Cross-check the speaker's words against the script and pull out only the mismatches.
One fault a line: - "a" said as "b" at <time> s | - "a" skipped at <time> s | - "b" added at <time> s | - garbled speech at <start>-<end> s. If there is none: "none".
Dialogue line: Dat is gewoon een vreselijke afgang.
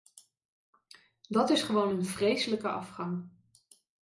none